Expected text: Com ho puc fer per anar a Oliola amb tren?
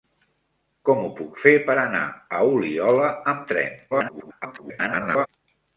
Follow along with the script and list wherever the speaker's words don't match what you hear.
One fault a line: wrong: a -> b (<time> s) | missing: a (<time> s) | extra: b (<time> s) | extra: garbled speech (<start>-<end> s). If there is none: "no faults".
extra: garbled speech (3.9-5.3 s)